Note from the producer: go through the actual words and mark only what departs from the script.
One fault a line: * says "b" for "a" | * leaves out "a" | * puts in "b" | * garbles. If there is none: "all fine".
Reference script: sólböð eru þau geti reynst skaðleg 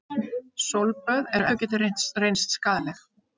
all fine